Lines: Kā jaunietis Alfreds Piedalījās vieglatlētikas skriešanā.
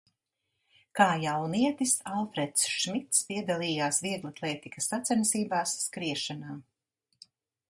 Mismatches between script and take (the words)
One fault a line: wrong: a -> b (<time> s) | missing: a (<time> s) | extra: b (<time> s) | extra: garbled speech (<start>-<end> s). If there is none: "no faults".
extra: Šmits (2.8 s)
extra: sacensībās (4.9 s)